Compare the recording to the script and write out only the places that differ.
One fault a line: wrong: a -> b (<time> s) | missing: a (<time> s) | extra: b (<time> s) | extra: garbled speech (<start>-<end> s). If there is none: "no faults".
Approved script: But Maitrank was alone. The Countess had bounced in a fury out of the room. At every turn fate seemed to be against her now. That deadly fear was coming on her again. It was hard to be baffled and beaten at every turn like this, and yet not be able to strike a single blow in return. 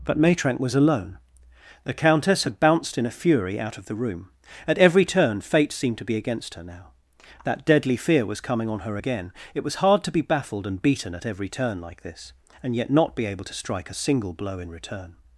no faults